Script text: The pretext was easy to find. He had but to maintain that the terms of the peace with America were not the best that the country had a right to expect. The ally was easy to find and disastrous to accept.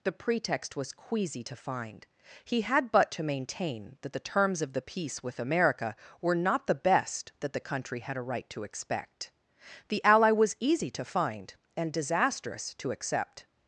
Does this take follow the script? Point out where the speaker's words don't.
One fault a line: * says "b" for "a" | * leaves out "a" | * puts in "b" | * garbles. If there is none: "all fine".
* says "queasy" for "easy"